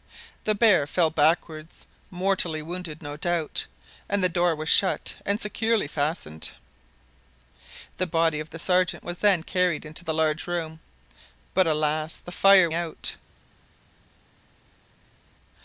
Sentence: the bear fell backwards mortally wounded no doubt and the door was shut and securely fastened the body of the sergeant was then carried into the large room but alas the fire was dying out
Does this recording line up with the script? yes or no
no